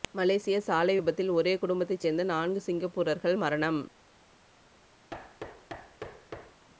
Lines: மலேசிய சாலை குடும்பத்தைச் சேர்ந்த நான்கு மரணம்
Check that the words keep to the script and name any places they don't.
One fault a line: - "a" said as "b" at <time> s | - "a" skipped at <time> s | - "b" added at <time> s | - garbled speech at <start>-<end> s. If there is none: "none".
- "விபத்தில் ஒரே" added at 0.9 s
- "சிங்கப்பூரர்கள்" added at 2.6 s